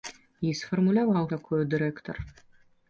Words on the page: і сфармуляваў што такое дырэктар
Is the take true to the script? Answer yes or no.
no